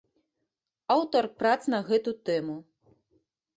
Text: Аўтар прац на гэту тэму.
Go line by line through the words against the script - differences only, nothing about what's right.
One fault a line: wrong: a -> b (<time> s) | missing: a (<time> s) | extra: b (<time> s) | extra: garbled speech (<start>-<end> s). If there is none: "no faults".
no faults